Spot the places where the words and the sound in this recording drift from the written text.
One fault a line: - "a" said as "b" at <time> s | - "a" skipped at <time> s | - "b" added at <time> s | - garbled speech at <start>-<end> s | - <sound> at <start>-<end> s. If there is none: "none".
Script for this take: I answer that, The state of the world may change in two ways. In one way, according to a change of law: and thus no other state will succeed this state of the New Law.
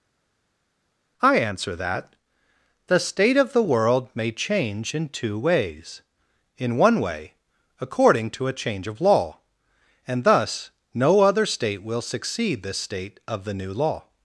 none